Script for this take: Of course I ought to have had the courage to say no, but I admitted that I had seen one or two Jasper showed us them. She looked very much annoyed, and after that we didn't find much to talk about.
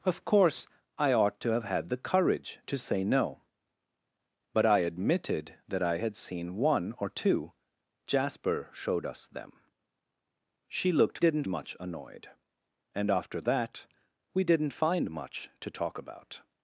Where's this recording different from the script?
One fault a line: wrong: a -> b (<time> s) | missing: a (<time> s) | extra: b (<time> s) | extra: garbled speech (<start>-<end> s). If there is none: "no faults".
wrong: very -> didn't (11.2 s)